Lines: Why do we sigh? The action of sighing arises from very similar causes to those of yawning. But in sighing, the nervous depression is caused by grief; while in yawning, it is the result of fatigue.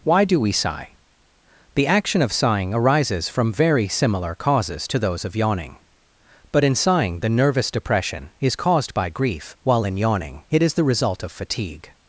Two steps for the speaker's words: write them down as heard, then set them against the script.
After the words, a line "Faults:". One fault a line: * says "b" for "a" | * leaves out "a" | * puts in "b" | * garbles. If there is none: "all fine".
Why do we sigh? The action of sighing arises from very similar causes to those of yawning. But in sighing, the nervous depression is caused by grief; while in yawning, it is the result of fatigue.
Faults:
all fine